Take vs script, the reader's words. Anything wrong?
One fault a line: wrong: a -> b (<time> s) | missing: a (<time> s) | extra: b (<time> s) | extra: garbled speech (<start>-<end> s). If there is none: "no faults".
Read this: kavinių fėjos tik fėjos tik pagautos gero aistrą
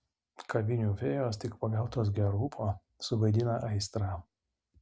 wrong: fėjos tik pagautos gero -> pagautos gero ūpo suvaidina (1.6 s)